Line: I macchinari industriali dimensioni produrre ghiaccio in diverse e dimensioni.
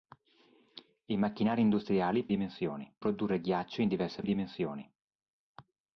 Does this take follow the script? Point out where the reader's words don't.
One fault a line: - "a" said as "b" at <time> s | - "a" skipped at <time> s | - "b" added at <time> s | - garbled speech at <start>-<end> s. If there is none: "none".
none